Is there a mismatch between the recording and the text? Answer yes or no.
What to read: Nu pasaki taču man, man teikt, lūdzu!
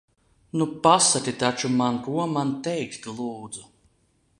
yes